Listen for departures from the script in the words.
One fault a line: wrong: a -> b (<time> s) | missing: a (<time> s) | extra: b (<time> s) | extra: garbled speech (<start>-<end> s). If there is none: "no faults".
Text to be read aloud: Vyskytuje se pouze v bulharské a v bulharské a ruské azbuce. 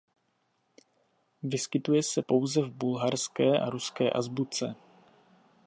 missing: v bulharské a (3.7 s)